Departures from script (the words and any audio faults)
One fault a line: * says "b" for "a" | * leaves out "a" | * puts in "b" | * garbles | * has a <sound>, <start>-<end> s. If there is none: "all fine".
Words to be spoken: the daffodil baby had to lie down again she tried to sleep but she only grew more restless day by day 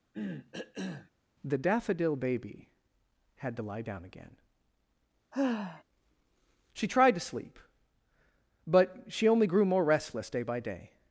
* has a cough, 0.1-1.1 s
* has a sigh, 5.3-5.8 s